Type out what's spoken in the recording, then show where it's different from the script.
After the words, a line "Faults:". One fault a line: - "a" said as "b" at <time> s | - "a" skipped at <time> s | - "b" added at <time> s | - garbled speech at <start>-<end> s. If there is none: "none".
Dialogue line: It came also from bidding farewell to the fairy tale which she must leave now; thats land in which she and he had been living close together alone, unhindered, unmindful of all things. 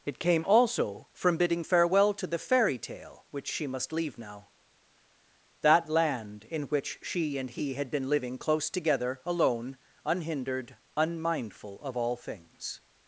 It came also from bidding farewell to the fairy tale which she must leave now; that land in which she and he had been living close together alone, unhindered, unmindful of all things.
Faults:
- "thats" said as "that" at 5.6 s